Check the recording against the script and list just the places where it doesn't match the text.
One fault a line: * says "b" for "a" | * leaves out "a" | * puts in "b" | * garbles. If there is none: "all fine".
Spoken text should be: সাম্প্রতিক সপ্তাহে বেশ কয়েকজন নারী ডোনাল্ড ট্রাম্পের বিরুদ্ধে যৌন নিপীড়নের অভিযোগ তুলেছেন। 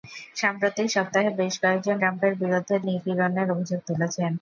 * leaves out "নারী ডোনাল্ড"
* leaves out "যৌন"